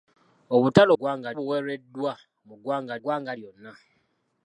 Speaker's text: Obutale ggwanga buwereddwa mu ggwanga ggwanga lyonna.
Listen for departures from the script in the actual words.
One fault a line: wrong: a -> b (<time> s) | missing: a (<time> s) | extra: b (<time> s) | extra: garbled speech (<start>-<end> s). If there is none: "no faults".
no faults